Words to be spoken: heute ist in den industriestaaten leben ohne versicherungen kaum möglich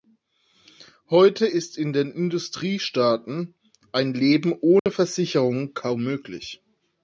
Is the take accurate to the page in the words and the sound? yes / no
no